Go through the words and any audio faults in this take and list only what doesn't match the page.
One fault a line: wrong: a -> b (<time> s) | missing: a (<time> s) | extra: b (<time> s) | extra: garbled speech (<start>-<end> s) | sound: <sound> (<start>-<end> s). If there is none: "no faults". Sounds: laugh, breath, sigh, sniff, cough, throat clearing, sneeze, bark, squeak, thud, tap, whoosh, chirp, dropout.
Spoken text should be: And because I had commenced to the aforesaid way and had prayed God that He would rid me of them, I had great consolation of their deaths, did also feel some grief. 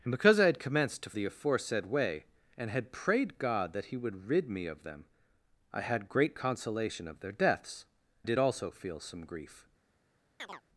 sound: chirp (10.4-10.6 s)